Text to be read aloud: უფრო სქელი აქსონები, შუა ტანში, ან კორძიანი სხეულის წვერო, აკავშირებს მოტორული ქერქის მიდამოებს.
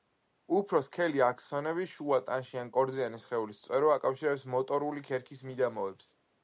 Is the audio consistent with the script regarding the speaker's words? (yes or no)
yes